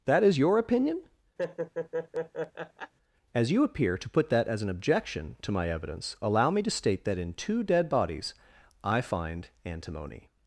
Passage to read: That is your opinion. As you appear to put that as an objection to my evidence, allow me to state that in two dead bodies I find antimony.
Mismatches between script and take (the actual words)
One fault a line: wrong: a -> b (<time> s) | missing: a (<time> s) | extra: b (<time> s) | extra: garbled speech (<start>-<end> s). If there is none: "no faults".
no faults